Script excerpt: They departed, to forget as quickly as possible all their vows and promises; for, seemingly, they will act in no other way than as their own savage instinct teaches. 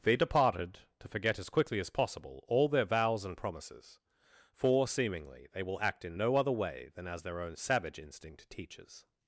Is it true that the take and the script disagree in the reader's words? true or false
false